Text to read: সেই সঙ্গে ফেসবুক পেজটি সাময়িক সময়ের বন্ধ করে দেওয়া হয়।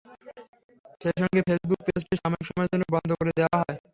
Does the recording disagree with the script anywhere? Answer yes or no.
yes